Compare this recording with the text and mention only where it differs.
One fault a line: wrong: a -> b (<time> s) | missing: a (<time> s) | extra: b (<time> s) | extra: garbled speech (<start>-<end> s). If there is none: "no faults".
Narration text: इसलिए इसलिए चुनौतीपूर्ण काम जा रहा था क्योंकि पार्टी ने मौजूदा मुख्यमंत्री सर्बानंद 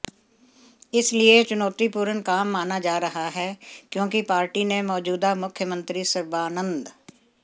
missing: इसलिए (1.4 s)
extra: माना (2.5 s)
wrong: था -> है (3.3 s)